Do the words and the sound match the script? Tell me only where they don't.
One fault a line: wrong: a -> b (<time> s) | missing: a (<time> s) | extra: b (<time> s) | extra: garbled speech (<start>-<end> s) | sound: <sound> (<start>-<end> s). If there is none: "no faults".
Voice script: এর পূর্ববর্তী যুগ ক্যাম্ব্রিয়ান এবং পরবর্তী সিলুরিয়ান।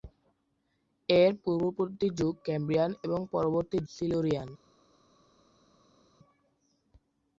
no faults